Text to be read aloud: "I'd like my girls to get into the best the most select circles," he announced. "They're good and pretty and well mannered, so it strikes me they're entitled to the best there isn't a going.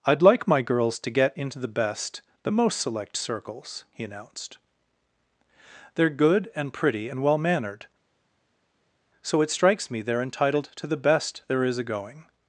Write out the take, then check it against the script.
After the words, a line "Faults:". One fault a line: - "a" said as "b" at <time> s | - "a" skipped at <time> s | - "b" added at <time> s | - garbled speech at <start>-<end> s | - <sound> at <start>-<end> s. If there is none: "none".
"I'd like my girls to get into the best the most select circles," he announced. "They're good and pretty and well mannered, so it strikes me they're entitled to the best there is a going.
Faults:
- "isn't" said as "is" at 11.6 s